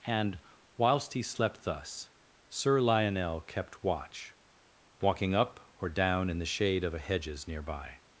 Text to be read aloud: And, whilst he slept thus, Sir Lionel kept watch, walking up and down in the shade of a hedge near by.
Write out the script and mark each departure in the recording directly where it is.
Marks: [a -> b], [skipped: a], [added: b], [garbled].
And, whilst he slept thus, Sir Lionel kept watch, walking up [and -> or] down in the shade of a [hedge -> hedges] near by.